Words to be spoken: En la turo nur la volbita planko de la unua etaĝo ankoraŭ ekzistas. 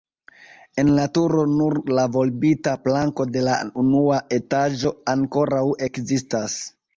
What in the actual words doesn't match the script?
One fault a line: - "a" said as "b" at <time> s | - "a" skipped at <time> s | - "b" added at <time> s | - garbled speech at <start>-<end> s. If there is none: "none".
none